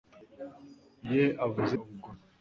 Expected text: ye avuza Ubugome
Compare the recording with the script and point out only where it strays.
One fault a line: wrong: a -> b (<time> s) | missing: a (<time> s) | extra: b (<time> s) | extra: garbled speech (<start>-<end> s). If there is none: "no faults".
no faults